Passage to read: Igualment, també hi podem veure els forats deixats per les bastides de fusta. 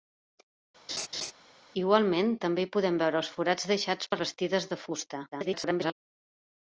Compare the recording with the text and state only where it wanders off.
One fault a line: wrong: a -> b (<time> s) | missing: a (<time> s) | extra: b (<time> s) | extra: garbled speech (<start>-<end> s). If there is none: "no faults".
missing: les (4.2 s)
extra: garbled speech (5.3-5.9 s)